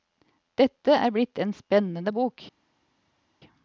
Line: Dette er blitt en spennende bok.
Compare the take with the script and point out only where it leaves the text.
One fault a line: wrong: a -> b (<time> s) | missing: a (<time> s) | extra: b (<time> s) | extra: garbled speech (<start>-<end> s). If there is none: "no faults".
no faults